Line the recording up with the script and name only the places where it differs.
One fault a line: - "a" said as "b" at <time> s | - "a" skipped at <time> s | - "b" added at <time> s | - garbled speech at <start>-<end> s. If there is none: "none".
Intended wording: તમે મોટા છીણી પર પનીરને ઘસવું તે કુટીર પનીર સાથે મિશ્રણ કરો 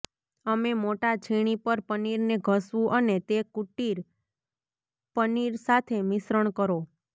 - "તમે" said as "અમે" at 0.5 s
- "અને" added at 3.0 s